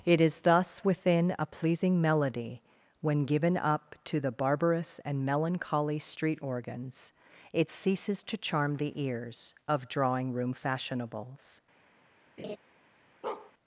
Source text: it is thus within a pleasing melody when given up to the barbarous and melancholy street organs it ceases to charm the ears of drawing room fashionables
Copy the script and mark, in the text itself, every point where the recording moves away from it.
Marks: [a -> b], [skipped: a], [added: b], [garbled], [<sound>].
it is thus within a pleasing melody when given up to the barbarous and melancholy street organs it ceases to charm the ears of drawing room fashionables [laugh] [bark]